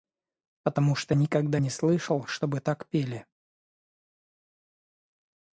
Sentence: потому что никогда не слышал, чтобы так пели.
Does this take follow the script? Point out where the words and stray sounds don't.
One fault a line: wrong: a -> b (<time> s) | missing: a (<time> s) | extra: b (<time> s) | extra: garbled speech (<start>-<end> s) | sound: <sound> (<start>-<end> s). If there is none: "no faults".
no faults